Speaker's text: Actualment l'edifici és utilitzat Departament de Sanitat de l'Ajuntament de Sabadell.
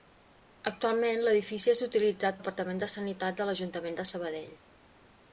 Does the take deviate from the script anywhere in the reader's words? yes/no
no